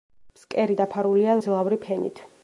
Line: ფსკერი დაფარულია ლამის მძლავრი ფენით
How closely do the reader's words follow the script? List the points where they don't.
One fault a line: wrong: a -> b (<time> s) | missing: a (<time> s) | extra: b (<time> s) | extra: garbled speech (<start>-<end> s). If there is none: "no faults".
missing: ლამის (1.4 s)